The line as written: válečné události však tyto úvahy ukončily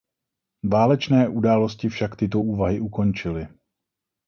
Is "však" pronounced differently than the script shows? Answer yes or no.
no